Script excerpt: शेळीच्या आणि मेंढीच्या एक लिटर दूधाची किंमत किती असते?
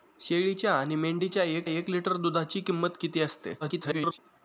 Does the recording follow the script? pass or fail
fail